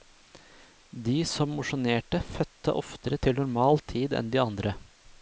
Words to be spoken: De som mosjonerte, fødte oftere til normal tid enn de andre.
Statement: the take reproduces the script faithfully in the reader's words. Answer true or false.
true